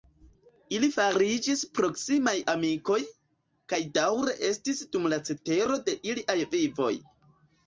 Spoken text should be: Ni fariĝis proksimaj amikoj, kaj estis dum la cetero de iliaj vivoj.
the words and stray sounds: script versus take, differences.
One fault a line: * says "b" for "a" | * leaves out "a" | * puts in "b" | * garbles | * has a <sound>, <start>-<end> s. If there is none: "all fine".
* says "Ili" for "Ni"
* puts in "daŭre"